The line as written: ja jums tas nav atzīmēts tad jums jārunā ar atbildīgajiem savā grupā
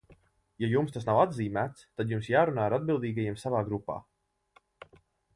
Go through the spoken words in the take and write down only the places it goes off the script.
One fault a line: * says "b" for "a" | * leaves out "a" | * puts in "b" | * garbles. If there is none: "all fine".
all fine